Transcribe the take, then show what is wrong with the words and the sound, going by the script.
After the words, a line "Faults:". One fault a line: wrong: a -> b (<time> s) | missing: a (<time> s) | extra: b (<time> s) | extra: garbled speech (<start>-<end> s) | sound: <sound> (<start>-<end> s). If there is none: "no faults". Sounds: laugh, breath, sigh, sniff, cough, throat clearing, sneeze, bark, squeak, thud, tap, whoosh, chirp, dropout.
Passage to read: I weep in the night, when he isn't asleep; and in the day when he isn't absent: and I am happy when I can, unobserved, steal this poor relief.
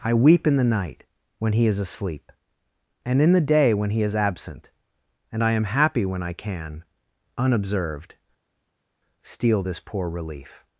I weep in the night, when he is asleep; and in the day when he is absent: and I am happy when I can, unobserved, steal this poor relief.
Faults:
wrong: isn't -> is (1.7 s)
wrong: isn't -> is (4.0 s)